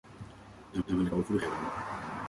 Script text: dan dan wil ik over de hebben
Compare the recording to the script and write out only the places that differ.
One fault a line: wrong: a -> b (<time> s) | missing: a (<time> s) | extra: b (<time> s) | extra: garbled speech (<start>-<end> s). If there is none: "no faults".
no faults